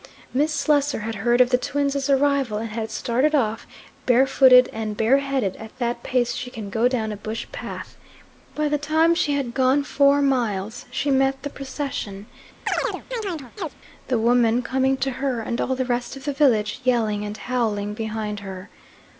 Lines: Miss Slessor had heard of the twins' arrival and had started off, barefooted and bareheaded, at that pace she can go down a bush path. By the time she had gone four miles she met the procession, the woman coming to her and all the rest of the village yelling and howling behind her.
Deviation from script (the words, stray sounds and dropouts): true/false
true